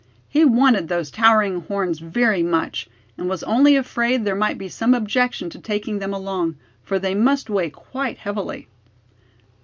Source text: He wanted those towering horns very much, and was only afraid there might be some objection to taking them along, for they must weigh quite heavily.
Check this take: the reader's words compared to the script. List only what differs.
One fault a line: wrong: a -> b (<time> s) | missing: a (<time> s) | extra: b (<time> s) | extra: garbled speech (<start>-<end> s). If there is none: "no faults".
no faults